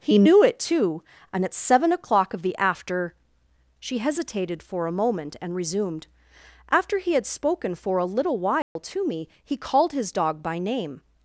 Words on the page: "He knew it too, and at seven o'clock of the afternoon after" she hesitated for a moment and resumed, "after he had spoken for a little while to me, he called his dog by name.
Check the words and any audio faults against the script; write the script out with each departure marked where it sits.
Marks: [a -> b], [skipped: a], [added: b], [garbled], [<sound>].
"He knew it too, and at seven o'clock of the [skipped: afternoon] after" she hesitated for a moment and resumed, "after he had spoken for a little while [dropout] to me, he called his dog by name.